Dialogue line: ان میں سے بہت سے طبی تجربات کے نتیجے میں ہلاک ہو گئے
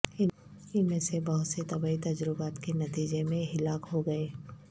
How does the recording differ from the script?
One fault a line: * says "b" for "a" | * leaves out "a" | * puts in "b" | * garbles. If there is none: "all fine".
all fine